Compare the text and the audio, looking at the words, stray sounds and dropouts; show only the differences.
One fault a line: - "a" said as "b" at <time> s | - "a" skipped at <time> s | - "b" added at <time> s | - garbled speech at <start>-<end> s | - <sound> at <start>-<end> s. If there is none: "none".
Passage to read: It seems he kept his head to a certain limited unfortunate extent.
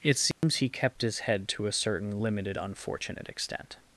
- dropout at 0.3-0.4 s